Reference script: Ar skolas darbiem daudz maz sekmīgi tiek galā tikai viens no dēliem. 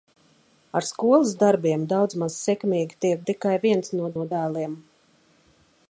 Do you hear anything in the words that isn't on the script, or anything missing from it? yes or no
yes